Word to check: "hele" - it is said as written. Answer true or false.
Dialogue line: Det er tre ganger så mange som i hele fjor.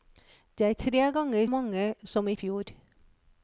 false